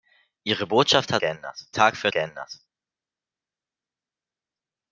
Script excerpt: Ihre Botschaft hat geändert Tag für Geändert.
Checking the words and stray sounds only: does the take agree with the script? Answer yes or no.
yes